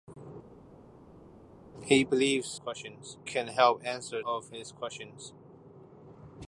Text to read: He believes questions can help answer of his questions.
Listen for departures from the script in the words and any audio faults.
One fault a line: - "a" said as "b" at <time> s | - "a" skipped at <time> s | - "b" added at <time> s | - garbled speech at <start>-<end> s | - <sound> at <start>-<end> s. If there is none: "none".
none